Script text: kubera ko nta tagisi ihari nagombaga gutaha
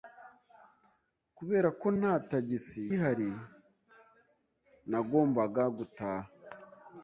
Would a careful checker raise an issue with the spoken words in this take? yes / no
no